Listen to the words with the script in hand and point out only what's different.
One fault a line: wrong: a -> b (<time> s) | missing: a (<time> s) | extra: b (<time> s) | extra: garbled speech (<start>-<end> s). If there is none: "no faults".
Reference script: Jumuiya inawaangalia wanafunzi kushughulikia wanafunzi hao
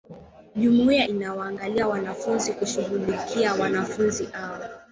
no faults